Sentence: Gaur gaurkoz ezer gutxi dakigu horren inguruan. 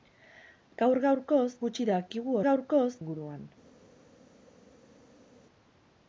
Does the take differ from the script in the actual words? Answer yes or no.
yes